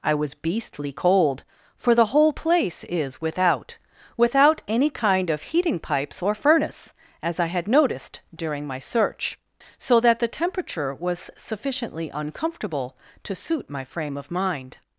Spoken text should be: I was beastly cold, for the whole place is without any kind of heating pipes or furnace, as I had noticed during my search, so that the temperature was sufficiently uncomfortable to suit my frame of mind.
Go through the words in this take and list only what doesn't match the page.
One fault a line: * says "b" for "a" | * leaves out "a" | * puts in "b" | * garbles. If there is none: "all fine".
* puts in "without"